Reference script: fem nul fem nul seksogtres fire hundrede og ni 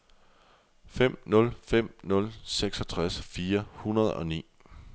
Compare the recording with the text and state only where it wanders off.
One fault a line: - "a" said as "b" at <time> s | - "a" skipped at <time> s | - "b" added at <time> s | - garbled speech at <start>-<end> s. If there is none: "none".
none